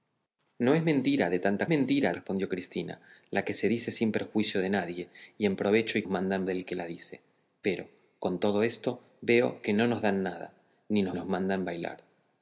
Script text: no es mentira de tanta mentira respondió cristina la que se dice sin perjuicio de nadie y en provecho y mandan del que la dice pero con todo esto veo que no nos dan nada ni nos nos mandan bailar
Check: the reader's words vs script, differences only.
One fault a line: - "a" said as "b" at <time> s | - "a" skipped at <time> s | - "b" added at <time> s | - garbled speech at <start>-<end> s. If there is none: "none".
none